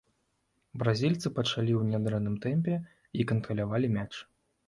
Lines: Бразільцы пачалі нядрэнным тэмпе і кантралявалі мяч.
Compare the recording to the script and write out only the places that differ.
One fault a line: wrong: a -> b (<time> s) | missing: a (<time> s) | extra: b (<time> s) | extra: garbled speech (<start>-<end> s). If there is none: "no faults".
extra: ў (1.8 s)